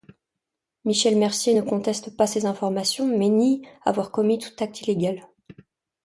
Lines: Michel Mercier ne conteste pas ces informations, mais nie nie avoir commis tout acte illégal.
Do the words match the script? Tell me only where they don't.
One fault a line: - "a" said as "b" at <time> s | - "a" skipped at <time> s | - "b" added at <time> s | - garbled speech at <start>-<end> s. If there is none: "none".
- "nie" skipped at 3.7 s